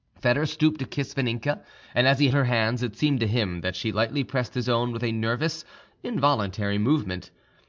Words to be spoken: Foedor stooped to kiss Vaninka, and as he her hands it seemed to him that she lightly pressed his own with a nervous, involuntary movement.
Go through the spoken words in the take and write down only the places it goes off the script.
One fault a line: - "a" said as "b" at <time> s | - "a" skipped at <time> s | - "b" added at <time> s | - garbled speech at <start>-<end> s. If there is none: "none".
none